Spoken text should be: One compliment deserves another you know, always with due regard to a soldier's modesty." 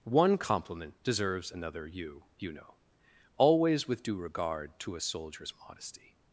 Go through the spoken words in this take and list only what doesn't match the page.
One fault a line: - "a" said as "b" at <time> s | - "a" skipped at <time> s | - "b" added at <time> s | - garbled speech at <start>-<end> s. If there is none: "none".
- "you" added at 2.4 s